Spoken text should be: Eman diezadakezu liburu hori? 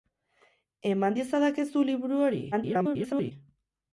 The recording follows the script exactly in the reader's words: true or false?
false